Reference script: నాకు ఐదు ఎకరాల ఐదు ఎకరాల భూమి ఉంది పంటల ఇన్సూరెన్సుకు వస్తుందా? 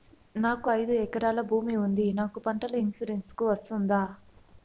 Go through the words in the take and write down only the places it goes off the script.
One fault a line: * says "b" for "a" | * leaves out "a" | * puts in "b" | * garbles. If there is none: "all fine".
* leaves out "ఐదు ఎకరాల"
* puts in "నాకు"